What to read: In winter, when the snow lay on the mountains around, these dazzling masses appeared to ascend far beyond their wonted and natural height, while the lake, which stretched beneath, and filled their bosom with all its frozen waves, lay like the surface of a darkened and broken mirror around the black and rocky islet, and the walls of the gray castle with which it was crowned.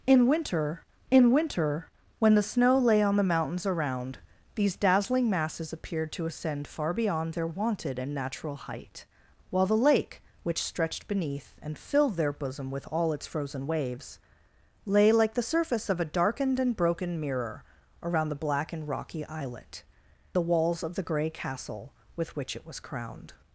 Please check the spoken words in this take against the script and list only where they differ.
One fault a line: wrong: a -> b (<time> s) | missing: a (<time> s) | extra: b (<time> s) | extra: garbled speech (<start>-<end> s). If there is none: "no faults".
extra: in winter (1.1 s)
missing: and (19.8 s)